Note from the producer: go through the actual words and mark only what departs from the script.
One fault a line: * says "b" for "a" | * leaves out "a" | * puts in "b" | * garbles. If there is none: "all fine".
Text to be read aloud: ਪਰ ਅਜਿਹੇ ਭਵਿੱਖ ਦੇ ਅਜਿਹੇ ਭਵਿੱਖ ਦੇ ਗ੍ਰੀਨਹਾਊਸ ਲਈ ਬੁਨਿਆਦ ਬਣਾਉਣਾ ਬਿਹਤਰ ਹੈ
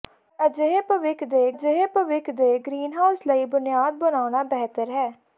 all fine